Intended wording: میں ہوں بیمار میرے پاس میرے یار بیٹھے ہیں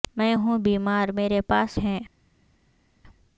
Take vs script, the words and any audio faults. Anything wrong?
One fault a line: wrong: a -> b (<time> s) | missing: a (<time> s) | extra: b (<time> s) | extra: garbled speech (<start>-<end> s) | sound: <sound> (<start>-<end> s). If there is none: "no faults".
missing: میرے یار بیٹھے (1.8 s)